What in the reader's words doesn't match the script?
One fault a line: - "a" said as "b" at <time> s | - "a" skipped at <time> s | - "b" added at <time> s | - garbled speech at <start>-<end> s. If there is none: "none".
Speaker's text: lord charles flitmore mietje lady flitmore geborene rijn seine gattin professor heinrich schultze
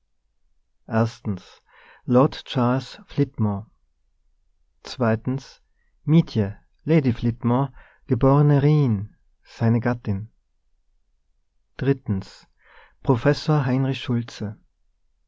none